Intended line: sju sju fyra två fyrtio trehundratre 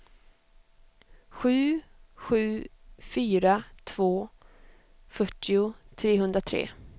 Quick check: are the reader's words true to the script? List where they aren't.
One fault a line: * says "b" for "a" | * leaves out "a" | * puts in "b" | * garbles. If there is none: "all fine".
all fine